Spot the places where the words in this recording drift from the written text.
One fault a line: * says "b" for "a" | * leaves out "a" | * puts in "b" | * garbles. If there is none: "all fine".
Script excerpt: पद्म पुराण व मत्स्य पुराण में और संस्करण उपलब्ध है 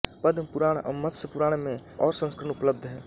all fine